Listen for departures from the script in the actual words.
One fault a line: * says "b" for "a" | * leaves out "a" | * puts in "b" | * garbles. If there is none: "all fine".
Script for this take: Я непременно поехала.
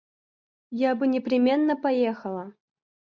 * puts in "бы"